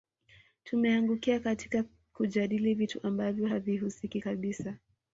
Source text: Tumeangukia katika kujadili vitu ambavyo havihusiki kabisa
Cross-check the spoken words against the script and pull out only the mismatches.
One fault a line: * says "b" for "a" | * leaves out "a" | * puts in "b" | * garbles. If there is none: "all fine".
all fine